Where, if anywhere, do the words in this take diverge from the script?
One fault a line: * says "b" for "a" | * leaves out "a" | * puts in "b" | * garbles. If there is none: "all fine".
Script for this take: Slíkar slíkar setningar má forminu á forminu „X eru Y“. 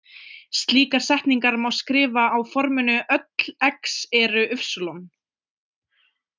* leaves out "slíkar"
* says "skrifa" for "forminu"
* puts in "Öll"